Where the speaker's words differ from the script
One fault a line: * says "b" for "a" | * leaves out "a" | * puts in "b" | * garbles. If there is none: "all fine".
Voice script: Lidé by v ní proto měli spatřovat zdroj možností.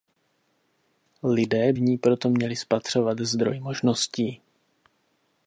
* leaves out "by"